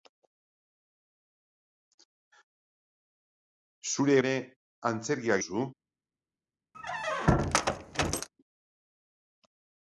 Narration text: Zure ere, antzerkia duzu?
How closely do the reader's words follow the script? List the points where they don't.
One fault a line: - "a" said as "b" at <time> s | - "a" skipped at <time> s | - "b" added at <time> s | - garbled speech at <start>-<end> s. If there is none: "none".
none